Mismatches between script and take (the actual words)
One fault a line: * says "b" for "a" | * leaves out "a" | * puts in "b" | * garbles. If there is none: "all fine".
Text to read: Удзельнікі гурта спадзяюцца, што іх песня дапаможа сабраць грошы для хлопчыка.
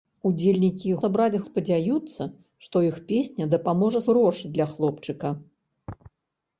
* says "сабраць" for "гурта"
* leaves out "сабраць"